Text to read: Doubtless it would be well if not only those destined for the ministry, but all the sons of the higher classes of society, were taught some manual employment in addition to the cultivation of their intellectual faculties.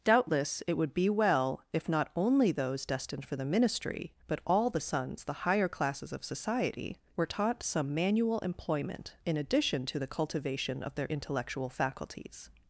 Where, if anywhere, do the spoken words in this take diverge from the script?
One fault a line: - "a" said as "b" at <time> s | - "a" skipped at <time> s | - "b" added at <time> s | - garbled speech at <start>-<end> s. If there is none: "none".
- "of" skipped at 5.2 s